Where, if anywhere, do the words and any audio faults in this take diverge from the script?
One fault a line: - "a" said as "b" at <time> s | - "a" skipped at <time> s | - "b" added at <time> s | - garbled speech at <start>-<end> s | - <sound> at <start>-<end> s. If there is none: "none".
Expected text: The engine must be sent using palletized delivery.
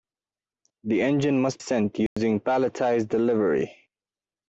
- "be" skipped at 1.6 s
- dropout at 2.1-2.2 s